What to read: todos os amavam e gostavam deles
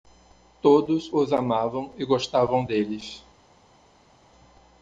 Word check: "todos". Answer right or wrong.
right